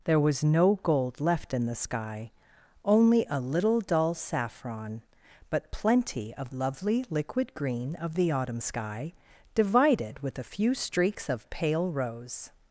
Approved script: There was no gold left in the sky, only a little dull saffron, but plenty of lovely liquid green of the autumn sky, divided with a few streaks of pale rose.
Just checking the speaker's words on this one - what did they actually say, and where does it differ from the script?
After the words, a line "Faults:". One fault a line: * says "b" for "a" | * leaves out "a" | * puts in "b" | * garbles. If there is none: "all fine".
There was no gold left in the sky, only a little dull saffron, but plenty of lovely liquid green of the autumn sky, divided with a few streaks of pale rose.
Faults:
all fine